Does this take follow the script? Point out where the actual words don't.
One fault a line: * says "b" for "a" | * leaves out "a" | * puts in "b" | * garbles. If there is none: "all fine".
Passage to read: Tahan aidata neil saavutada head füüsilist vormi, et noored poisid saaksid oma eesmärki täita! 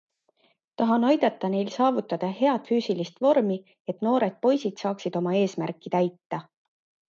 all fine